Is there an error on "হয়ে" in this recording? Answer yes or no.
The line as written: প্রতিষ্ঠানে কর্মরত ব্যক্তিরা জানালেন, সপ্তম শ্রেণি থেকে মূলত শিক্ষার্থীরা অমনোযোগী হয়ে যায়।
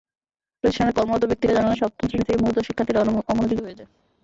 no